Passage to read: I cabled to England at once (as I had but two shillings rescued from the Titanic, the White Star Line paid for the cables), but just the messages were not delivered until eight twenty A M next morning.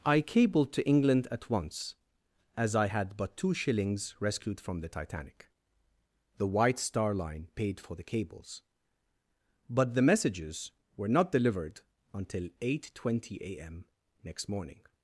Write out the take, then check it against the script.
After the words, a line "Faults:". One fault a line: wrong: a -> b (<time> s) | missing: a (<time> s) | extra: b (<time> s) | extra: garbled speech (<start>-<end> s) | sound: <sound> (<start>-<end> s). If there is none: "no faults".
I cabled to England at once (as I had but two shillings rescued from the Titanic, the White Star Line paid for the cables), but the messages were not delivered until eight twenty A M next morning.
Faults:
missing: just (9.9 s)